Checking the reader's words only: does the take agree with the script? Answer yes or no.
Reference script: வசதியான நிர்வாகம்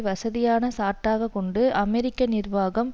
no